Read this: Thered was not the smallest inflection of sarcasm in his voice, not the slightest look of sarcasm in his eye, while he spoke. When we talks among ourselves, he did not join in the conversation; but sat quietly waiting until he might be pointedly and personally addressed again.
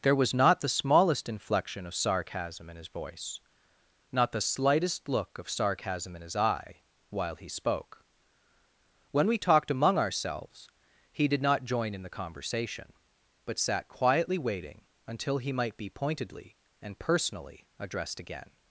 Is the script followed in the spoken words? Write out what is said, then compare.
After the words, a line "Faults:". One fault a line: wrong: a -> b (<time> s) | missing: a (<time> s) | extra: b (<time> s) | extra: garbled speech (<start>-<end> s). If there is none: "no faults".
There was not the smallest inflection of sarcasm in his voice, not the slightest look of sarcasm in his eye, while he spoke. When we talked among ourselves, he did not join in the conversation; but sat quietly waiting until he might be pointedly and personally addressed again.
Faults:
wrong: Thered -> There (0.0 s)
wrong: talks -> talked (9.4 s)